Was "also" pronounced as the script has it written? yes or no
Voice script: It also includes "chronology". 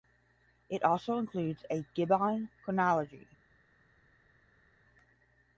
yes